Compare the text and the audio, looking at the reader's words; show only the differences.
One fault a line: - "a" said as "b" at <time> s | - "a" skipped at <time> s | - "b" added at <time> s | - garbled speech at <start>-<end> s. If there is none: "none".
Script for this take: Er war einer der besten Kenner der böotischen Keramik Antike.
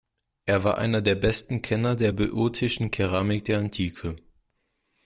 - "der" added at 3.4 s